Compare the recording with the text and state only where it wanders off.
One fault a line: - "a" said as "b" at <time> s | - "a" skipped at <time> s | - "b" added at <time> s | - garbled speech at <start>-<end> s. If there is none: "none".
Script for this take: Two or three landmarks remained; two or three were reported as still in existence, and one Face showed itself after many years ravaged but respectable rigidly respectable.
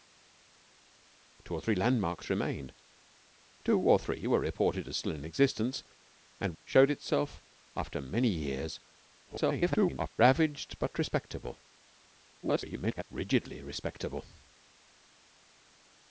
- "one Face" skipped at 6.5 s
- garbled speech at 9.3-10.1 s
- garbled speech at 12.4-13.0 s